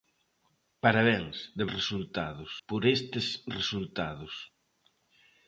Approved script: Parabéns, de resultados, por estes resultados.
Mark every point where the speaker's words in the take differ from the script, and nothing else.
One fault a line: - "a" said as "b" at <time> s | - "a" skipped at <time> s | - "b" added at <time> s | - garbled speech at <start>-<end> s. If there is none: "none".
none